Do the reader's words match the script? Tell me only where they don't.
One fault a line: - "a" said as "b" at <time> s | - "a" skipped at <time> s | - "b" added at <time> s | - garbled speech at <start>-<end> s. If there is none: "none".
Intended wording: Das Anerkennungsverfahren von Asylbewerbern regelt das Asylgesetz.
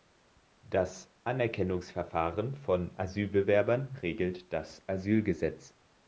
none